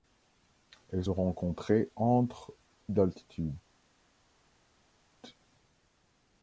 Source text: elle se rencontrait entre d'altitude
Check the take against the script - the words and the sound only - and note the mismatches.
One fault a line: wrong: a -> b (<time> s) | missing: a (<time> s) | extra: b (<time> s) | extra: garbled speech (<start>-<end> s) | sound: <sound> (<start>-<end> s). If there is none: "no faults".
no faults